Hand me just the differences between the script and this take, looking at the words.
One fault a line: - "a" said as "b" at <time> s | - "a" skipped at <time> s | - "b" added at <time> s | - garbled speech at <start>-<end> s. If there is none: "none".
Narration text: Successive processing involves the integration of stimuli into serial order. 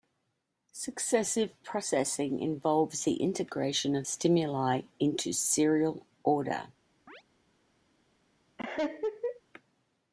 none